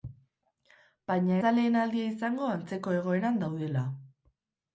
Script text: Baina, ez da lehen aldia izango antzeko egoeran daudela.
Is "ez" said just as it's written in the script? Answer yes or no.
no